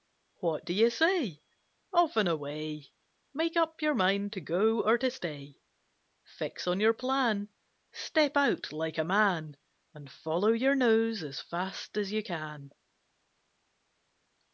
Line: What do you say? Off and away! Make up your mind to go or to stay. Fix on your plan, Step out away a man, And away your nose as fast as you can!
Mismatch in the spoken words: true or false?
true